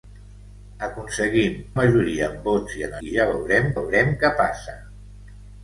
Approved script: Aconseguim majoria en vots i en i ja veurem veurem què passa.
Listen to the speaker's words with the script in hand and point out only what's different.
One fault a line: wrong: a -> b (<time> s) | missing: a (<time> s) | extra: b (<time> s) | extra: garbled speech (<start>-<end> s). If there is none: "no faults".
no faults